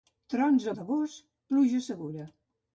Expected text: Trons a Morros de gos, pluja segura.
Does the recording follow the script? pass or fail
fail